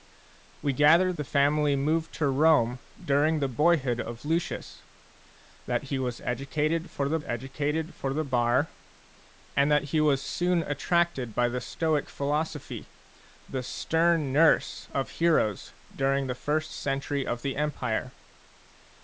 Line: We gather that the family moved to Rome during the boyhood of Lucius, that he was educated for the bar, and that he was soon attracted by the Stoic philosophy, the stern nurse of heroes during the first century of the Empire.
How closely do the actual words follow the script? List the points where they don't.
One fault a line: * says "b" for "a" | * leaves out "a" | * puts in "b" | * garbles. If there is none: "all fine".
* leaves out "that"
* puts in "educated for the"